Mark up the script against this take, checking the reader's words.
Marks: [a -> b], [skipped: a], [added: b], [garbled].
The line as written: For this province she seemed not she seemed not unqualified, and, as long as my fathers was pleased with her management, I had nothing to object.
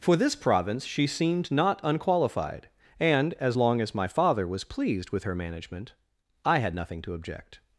For this province she seemed not [skipped: she seemed not] unqualified, and, as long as my [fathers -> father] was pleased with her management, I had nothing to object.